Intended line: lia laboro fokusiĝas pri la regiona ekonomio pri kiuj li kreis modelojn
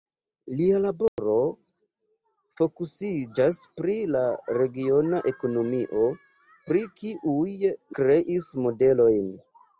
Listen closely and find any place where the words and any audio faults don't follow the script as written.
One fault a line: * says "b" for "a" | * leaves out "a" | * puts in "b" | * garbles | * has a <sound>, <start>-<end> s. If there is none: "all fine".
* has a dropout, 1.1-1.2 s
* leaves out "li"